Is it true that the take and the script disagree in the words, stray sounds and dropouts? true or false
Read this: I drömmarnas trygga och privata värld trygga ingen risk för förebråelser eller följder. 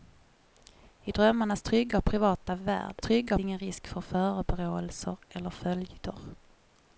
false